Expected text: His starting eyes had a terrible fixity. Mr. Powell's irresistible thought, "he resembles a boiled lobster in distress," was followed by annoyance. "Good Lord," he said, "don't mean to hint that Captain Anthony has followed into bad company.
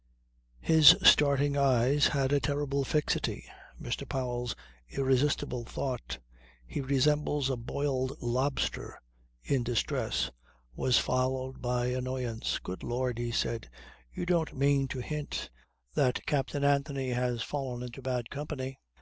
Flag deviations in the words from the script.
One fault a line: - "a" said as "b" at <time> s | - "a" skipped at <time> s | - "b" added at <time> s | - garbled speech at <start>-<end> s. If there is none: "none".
- "you" added at 14.1 s
- "followed" said as "fallen" at 17.4 s